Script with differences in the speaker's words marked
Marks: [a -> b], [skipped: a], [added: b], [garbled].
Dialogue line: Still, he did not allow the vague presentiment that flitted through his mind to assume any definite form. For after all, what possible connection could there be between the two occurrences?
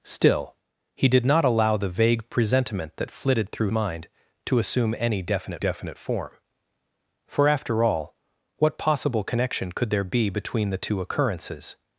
Still, he did not allow the vague presentiment that flitted through [skipped: his] mind to assume any definite [added: definite] form. For after all, what possible connection could there be between the two occurrences?